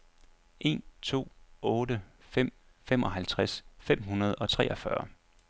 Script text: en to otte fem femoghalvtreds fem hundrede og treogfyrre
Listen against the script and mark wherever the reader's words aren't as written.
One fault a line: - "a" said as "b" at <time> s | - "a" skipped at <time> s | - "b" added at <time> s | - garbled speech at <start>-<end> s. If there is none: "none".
none